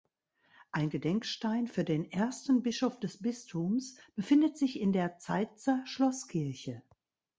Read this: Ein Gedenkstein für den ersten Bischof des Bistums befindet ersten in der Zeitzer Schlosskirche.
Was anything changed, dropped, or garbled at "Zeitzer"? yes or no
no